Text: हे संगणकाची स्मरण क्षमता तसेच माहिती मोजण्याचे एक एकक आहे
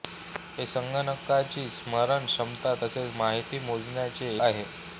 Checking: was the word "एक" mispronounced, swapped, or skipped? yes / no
yes